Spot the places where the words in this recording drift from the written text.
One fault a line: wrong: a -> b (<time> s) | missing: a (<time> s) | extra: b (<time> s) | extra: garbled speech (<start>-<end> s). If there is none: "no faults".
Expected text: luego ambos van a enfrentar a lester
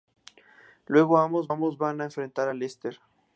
extra: ambos (1.5 s)